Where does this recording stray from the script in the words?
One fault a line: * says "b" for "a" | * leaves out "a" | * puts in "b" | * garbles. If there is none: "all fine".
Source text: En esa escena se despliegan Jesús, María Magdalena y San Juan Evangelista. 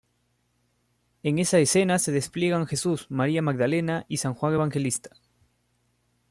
all fine